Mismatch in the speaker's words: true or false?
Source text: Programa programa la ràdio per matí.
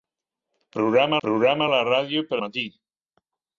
false